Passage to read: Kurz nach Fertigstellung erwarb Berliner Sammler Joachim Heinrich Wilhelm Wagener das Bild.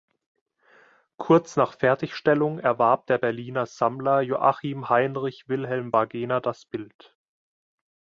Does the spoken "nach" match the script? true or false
true